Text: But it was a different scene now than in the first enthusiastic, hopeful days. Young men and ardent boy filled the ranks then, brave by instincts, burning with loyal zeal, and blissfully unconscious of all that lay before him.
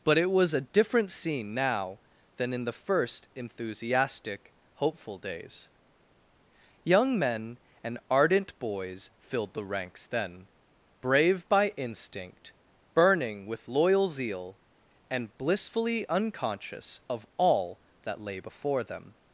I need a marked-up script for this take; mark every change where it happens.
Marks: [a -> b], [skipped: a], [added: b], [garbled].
But it was a different scene now than in the first enthusiastic, hopeful days. Young men and ardent [boy -> boys] filled the ranks then, brave by [instincts, -> instinct] burning with loyal zeal, and blissfully unconscious of all that lay before [him. -> them]